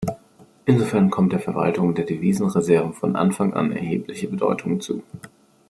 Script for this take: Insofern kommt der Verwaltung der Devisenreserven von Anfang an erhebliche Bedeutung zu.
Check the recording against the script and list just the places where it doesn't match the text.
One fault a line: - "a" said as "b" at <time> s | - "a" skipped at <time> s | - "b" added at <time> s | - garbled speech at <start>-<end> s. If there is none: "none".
none